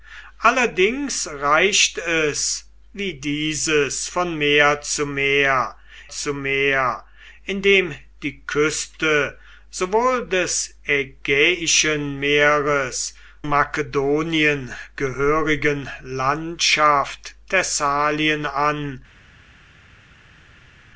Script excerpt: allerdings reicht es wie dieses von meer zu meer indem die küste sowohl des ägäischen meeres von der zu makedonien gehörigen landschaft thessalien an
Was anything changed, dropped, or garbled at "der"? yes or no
yes